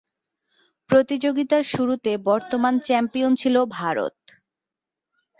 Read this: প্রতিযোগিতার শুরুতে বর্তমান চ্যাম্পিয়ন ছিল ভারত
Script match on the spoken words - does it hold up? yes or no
yes